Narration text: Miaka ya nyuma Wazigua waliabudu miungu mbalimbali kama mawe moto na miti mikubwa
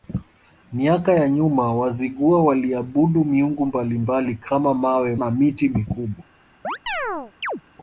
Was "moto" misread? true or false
true